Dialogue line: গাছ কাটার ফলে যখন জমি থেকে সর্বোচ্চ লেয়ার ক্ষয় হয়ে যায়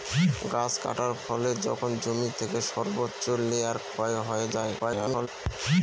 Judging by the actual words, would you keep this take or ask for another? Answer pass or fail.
fail